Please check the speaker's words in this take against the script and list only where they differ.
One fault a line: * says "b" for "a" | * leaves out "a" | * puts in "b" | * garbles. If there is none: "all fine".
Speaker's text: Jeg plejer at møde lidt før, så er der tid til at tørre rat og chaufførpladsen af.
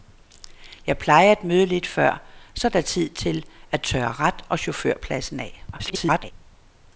* garbles